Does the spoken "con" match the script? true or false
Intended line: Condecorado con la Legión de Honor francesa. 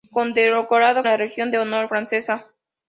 false